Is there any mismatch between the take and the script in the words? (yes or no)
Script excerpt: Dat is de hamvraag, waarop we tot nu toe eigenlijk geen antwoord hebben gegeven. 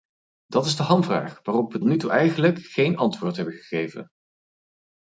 yes